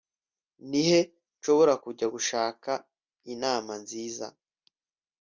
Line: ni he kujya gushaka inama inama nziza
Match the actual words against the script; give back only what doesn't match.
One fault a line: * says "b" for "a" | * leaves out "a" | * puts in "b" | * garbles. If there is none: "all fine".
* puts in "nshobora"
* leaves out "inama"